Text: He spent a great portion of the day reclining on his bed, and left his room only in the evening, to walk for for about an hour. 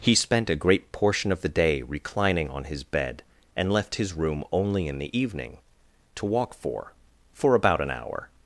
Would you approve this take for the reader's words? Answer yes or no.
yes